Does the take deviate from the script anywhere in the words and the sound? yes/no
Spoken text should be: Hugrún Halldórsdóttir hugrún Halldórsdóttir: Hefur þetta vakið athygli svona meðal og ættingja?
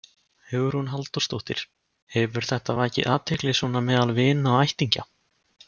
yes